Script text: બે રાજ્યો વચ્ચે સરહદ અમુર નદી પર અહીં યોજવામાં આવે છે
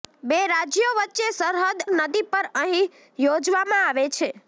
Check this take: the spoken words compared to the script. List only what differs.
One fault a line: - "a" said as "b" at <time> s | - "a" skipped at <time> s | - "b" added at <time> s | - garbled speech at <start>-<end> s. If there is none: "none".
- "અમુર" skipped at 1.8 s